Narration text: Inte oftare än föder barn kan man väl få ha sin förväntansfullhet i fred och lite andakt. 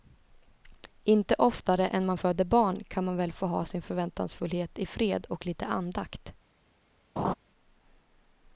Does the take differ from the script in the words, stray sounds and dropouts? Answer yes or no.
yes